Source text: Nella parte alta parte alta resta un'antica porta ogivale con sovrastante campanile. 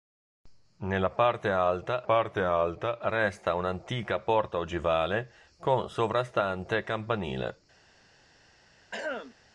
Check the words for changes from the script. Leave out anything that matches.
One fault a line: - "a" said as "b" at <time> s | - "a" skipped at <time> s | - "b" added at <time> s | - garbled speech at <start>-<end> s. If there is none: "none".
none